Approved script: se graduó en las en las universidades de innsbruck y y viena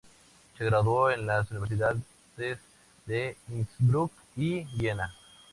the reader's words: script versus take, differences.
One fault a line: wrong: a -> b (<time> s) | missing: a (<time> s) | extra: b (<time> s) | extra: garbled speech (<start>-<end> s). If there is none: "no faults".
missing: en las (1.5 s)
missing: y (4.6 s)